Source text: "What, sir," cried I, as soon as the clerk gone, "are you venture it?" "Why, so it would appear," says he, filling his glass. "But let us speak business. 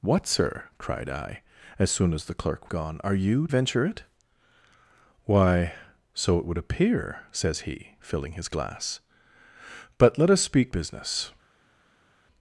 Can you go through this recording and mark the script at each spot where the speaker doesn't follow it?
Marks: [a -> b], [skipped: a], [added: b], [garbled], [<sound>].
"What, sir," cried I, as soon as the clerk gone, "are you venture it?" "Why, so it would appear," says he, filling his glass. "But let us speak business.